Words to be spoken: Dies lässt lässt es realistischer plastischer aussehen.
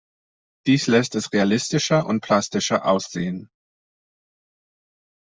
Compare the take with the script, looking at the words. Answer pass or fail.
fail